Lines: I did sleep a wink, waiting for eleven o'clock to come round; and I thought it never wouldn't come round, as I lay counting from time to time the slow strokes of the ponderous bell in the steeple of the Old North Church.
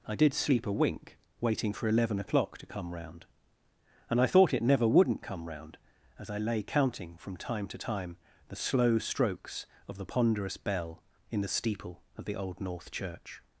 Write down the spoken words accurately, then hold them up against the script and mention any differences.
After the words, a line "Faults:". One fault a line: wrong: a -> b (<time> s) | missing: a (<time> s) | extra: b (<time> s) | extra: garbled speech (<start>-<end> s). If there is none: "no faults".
I did sleep a wink, waiting for eleven o'clock to come round; and I thought it never wouldn't come round, as I lay counting from time to time the slow strokes of the ponderous bell in the steeple of the Old North Church.
Faults:
no faults